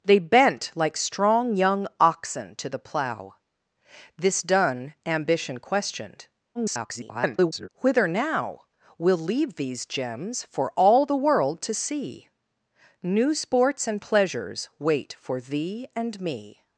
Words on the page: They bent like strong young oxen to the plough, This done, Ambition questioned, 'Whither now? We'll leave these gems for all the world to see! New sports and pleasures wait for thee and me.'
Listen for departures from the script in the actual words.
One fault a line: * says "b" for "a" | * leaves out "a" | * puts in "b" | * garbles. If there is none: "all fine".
* garbles